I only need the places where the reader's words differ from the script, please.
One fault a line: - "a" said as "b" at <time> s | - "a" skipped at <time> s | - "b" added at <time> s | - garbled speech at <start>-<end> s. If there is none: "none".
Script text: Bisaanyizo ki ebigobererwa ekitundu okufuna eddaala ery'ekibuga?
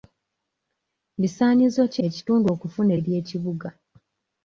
- "ebigobererwa" skipped at 2.0 s
- "eddaala" skipped at 2.9 s